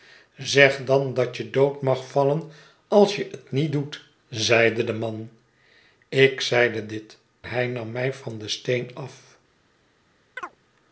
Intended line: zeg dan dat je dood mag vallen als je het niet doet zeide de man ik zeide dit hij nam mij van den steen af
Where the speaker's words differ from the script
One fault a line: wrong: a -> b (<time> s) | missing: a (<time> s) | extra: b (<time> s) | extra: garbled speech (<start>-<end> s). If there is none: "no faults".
no faults